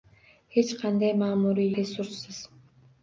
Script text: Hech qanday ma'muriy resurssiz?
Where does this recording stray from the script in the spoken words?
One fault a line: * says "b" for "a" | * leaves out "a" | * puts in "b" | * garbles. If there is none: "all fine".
all fine